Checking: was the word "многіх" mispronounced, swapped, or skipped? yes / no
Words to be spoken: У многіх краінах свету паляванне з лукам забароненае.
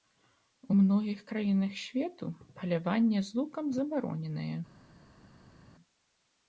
no